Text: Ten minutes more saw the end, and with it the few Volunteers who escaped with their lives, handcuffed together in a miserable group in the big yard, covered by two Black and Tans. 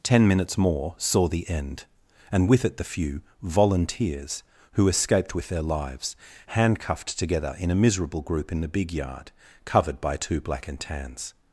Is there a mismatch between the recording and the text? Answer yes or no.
no